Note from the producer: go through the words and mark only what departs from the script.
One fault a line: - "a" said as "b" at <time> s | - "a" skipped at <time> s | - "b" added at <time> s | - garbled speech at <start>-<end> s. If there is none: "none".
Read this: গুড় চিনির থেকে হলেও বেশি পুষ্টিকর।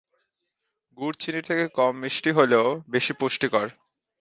- "কম মিষ্টি" added at 1.8 s